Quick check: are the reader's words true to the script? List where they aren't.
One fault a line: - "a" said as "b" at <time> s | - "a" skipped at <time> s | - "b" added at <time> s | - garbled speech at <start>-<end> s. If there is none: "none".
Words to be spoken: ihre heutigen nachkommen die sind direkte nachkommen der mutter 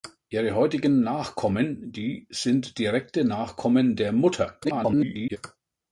- garbled speech at 4.6-5.4 s